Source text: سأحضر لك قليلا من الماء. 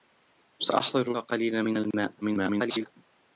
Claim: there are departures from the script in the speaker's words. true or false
true